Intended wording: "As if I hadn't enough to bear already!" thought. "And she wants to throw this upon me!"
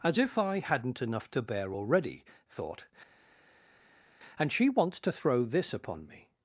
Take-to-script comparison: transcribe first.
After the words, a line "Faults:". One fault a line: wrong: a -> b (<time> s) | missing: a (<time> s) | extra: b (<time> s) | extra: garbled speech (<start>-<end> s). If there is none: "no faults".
"As if I hadn't enough to bear already!" thought. "And she wants to throw this upon me!"
Faults:
no faults